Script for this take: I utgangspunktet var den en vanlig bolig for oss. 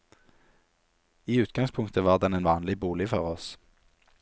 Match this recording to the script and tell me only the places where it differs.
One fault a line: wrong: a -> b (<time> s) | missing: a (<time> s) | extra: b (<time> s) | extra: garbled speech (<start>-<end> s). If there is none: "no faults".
no faults